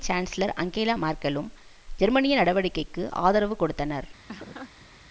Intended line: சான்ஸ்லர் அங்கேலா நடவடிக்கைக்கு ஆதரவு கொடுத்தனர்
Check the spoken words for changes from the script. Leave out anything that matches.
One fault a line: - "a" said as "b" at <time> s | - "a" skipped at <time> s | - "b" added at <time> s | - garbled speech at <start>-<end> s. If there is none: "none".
- "மேர்க்கெலும் ஜெர்மனிய" added at 1.0 s